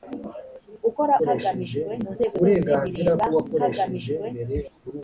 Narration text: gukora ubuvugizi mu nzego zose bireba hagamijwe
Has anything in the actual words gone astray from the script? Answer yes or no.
yes